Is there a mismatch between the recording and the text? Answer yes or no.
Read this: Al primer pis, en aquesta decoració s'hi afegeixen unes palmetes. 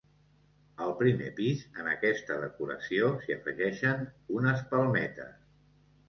no